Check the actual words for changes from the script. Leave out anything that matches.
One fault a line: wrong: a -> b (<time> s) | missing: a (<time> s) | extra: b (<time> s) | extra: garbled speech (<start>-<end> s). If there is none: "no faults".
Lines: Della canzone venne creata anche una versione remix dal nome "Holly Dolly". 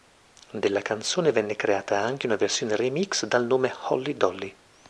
no faults